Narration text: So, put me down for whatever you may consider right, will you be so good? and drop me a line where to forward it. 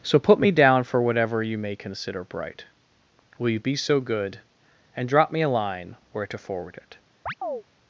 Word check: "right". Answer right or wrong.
wrong